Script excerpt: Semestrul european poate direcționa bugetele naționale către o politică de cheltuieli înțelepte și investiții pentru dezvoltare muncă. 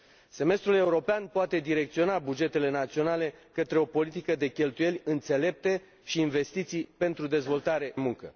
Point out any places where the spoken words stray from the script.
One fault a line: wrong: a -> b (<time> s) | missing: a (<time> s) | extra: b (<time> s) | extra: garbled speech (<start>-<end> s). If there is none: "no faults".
no faults